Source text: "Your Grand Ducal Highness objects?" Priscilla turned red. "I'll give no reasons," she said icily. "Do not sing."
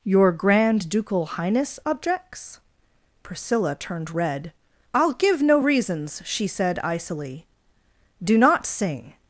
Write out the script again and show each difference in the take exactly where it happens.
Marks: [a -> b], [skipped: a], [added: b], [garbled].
"Your Grand Ducal Highness objects?" Priscilla turned red. "I'll give no reasons," she said icily. "Do not sing."